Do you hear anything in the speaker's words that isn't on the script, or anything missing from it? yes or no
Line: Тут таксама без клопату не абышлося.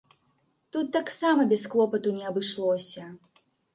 no